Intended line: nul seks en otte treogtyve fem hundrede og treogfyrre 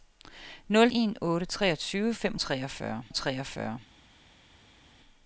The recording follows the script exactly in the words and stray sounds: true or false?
false